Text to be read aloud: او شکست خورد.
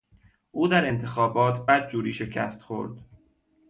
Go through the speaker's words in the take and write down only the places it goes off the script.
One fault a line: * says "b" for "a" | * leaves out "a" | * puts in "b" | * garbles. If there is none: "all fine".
* puts in "در انتخابات بدجوری"